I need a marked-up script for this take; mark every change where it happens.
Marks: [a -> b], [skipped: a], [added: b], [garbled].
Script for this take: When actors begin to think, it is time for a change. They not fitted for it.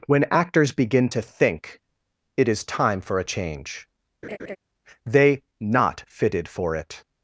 When actors begin to think, it is time for a change. They not fitted for it.